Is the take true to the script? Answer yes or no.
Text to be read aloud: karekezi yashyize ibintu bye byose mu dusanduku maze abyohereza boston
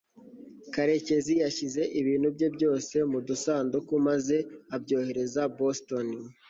yes